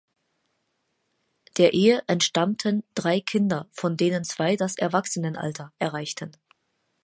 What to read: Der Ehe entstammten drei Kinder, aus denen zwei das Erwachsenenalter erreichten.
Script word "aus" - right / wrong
wrong